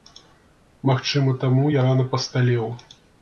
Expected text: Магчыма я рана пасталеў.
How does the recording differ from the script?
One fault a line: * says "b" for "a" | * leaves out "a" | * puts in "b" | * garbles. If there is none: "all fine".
* puts in "таму"